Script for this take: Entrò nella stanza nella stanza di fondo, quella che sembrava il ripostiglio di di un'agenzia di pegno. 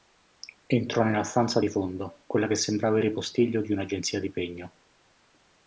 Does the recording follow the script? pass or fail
fail